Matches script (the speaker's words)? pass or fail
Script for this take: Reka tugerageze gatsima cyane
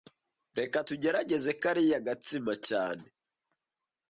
fail